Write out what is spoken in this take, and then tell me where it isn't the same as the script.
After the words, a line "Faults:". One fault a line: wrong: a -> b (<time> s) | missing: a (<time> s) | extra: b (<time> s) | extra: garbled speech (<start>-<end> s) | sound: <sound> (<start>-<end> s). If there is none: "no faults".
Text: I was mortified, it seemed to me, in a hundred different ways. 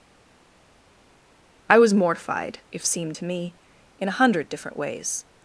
I was mortified, if seemed to me, in a hundred different ways.
Faults:
wrong: it -> if (2.7 s)